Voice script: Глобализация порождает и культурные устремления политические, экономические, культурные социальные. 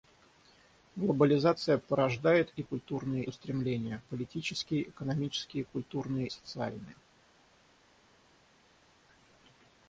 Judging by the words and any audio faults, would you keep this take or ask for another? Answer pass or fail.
pass